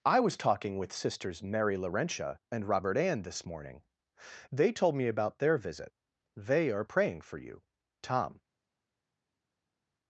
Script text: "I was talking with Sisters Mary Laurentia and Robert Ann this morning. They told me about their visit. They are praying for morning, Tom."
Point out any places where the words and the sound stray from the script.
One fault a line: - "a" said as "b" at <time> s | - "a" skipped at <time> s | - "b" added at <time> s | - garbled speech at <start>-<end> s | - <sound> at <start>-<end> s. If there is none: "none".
- "morning" said as "you" at 7.4 s